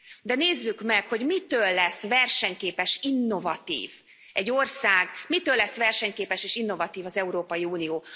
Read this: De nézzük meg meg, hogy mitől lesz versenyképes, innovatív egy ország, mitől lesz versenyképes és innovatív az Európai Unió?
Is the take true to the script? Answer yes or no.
no